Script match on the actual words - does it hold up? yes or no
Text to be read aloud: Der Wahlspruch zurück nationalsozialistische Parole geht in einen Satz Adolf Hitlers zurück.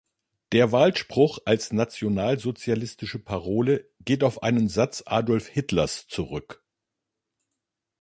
no